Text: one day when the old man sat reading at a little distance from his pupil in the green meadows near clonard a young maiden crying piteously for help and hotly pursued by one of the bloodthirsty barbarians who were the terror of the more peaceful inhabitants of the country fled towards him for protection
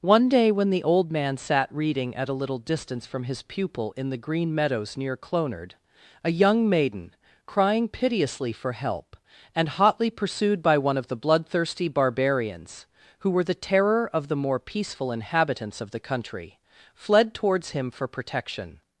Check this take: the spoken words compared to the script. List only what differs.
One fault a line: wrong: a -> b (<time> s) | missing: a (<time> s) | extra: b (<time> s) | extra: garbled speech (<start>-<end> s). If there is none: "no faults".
no faults